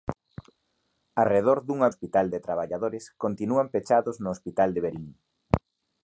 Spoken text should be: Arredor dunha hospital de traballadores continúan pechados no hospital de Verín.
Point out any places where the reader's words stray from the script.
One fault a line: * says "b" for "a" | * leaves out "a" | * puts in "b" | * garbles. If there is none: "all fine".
all fine